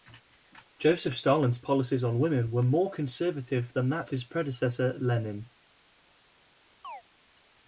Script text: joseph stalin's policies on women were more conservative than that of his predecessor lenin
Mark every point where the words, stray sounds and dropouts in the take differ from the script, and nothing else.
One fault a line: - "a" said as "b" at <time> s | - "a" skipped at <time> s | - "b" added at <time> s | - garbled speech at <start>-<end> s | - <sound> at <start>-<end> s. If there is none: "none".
- "of" skipped at 4.1 s
- chirp at 6.8-7.0 s